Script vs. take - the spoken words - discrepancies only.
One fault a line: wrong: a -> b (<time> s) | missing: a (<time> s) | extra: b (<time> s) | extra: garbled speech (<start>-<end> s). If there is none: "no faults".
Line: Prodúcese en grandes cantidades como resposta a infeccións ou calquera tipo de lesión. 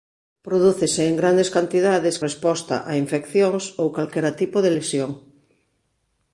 missing: como (2.1 s)